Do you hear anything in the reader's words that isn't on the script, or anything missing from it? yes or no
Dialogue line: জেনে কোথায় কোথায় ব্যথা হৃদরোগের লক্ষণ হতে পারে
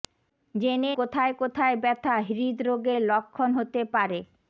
no